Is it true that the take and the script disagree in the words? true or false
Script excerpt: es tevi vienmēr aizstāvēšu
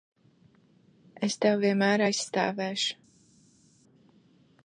false